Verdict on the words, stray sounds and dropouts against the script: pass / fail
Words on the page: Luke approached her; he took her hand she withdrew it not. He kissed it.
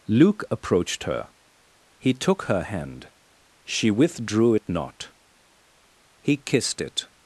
pass